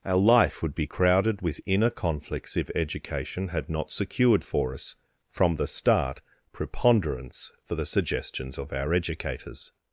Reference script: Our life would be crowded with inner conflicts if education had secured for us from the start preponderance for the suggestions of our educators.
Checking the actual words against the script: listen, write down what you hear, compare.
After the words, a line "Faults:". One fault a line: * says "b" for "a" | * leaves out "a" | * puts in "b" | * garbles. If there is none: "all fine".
Our life would be crowded with inner conflicts if education had not secured for us from the start preponderance for the suggestions of our educators.
Faults:
* puts in "not"